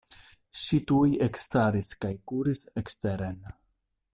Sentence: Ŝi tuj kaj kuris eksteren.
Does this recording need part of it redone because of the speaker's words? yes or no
yes